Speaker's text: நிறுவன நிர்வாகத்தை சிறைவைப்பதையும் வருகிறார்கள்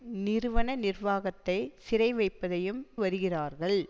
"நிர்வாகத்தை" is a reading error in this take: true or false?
false